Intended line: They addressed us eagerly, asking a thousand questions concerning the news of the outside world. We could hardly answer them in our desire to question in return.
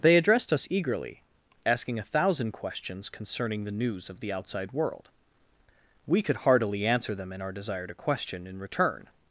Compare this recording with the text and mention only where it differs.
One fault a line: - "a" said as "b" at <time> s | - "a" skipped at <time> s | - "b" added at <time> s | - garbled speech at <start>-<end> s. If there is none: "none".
- "hardly" said as "heartily" at 6.4 s